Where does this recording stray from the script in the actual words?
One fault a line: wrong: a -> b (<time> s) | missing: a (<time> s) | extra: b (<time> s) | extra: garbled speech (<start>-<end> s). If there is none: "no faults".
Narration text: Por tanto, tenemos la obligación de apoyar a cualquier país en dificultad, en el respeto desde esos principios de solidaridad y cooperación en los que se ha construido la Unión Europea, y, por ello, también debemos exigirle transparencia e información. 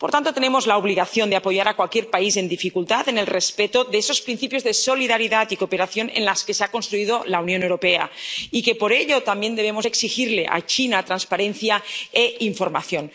wrong: desde -> de (3.8 s)
extra: a China (10.5 s)